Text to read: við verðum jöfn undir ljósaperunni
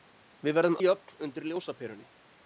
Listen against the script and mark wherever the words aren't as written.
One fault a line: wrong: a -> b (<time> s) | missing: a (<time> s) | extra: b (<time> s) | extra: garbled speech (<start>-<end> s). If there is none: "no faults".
no faults